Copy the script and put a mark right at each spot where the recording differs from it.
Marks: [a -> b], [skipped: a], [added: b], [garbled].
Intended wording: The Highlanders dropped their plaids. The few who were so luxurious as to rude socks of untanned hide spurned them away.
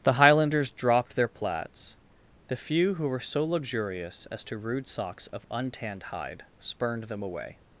The Highlanders dropped their plaids. The few who were so luxurious as to rude socks of untanned hide spurned them away.